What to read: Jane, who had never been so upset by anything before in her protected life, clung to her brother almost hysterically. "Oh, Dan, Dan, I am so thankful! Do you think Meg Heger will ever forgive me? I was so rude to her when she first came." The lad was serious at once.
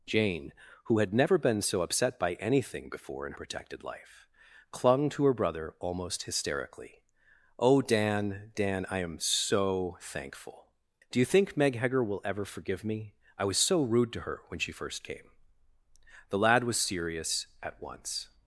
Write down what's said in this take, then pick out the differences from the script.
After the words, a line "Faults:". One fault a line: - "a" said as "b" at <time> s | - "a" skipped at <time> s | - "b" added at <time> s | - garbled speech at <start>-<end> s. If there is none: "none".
Jane, who had never been so upset by anything before in protected life, clung to her brother almost hysterically. "Oh, Dan, Dan, I am so thankful! Do you think Meg Heger will ever forgive me? I was so rude to her when she first came." The lad was serious at once.
Faults:
- "her" skipped at 3.3 s